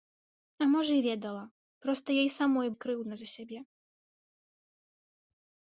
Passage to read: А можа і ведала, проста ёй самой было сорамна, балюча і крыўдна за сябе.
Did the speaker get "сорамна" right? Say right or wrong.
wrong